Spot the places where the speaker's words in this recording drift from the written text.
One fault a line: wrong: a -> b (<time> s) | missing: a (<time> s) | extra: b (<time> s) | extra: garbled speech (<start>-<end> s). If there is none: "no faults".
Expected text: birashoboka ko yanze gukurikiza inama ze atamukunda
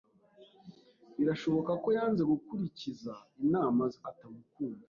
no faults